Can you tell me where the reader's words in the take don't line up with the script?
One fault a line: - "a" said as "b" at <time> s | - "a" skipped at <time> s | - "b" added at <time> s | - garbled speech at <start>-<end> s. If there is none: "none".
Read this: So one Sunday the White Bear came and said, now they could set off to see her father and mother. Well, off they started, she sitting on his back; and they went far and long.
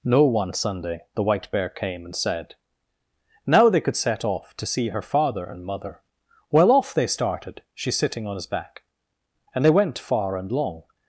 - "So" said as "No" at 0.0 s